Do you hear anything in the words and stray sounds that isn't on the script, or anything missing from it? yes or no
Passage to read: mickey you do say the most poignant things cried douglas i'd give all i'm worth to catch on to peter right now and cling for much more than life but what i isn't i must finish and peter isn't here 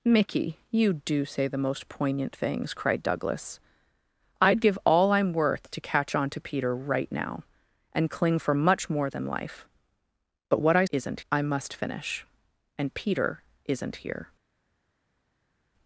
no